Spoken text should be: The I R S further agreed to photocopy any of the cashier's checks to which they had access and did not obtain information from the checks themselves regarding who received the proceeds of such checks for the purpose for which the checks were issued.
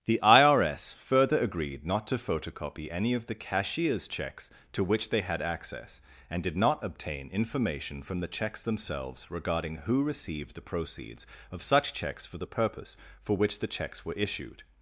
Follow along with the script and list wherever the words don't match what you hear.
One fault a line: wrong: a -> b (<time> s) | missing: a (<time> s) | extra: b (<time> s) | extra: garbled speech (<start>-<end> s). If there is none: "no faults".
extra: not (1.9 s)